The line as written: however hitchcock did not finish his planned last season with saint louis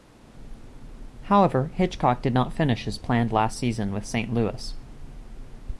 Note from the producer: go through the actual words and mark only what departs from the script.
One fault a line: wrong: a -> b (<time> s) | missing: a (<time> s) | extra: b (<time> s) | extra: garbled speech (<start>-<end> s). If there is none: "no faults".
no faults